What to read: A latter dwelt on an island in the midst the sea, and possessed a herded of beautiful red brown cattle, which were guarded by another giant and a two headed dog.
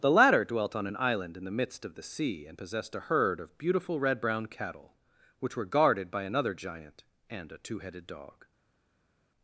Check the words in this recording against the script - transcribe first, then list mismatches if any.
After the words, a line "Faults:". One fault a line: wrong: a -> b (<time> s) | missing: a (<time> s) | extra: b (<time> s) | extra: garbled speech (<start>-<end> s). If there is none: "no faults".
The latter dwelt on an island in the midst of the sea, and possessed a herd of beautiful red brown cattle, which were guarded by another giant and a two headed dog.
Faults:
wrong: A -> The (0.0 s)
extra: of (1.8 s)
wrong: herded -> herd (3.1 s)